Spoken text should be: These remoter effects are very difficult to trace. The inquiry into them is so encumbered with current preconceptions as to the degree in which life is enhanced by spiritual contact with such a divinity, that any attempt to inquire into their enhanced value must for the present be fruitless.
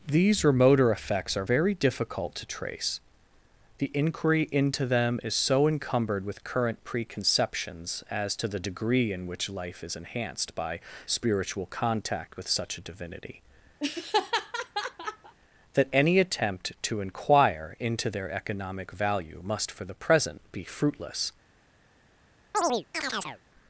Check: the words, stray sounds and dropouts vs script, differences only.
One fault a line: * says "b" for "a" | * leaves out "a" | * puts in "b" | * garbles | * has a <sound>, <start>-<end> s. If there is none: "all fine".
* has a laugh, 13.8-15.3 s
* says "economic" for "enhanced"
* has a chirp, 22.5-23.4 s